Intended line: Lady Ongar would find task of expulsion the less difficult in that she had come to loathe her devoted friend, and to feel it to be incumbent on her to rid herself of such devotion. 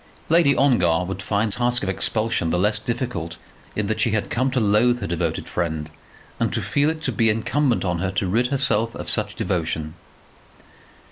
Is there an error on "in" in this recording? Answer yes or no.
no